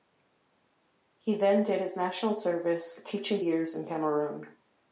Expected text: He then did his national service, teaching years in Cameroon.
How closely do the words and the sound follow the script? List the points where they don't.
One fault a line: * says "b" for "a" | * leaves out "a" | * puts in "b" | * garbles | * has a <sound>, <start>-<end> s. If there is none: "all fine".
all fine